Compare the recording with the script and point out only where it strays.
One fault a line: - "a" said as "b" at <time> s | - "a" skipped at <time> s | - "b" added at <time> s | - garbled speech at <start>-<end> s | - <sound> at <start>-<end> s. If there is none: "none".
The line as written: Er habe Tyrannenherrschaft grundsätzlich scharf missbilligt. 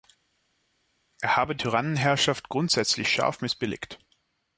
none